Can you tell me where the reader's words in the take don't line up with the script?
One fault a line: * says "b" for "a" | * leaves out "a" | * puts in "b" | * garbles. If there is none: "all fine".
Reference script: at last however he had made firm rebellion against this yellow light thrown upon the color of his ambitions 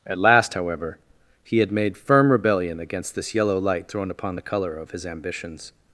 all fine